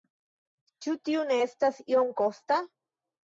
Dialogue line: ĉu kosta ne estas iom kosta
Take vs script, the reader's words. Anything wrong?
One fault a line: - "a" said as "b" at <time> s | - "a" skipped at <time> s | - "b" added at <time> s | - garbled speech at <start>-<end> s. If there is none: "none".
- "kosta" said as "tio" at 1.1 s